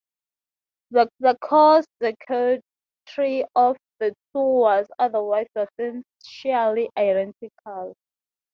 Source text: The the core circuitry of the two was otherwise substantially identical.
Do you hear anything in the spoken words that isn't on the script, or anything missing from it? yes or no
no